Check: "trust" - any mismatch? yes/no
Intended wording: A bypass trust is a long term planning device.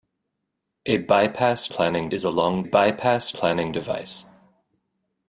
yes